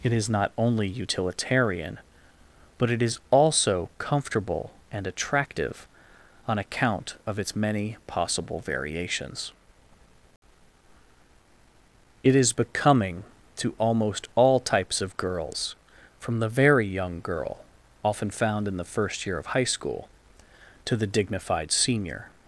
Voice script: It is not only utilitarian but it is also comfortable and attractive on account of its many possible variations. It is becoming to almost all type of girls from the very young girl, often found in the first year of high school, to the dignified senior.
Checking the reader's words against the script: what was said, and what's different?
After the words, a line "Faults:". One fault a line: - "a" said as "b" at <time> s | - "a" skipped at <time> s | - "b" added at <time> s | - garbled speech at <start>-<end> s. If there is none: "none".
It is not only utilitarian but it is also comfortable and attractive on account of its many possible variations. It is becoming to almost all types of girls from the very young girl, often found in the first year of high school, to the dignified senior.
Faults:
- "type" said as "types" at 14.6 s